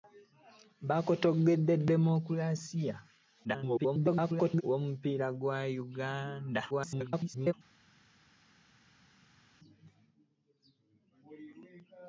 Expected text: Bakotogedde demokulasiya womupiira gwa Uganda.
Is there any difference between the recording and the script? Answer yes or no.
yes